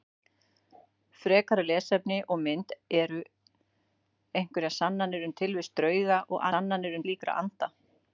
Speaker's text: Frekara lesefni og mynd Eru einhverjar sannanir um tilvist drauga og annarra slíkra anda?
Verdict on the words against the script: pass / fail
fail